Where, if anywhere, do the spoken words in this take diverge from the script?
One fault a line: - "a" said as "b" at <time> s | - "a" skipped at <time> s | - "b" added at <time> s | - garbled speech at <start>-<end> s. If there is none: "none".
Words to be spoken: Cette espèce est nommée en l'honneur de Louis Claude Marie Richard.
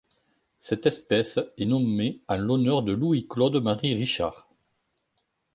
none